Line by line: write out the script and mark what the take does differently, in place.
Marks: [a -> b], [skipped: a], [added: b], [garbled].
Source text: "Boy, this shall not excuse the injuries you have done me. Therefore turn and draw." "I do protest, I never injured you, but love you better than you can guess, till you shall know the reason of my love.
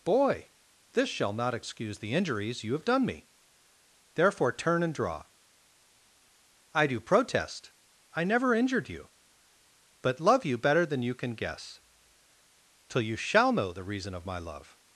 "Boy, this shall not excuse the injuries you have done me. Therefore turn and draw." "I do protest, I never injured you, but love you better than you can guess, till you shall know the reason of my love.